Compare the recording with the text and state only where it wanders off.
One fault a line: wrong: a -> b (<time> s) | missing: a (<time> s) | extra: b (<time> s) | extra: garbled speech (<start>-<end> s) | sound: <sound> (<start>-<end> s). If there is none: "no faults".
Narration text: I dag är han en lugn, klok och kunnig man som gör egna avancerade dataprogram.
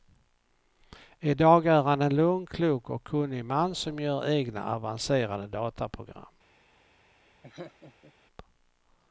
sound: laugh (7.4-8.1 s)